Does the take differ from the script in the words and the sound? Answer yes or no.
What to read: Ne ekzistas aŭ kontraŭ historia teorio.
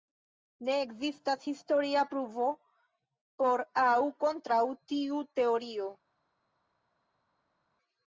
yes